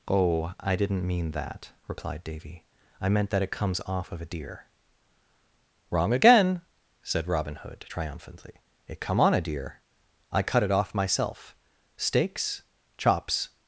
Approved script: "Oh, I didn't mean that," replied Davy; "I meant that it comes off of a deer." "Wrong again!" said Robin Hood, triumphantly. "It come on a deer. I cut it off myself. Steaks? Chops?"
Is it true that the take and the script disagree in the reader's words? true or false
false